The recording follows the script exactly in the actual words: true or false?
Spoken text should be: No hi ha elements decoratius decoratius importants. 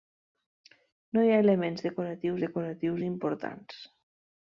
true